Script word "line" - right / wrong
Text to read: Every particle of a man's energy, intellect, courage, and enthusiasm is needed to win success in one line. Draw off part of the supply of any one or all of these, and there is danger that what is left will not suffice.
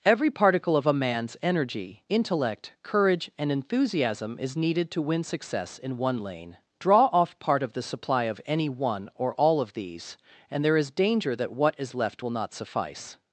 wrong